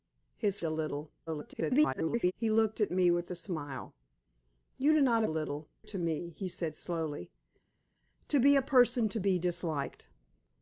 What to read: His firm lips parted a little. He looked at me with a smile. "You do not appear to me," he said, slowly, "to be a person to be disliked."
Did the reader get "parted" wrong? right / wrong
wrong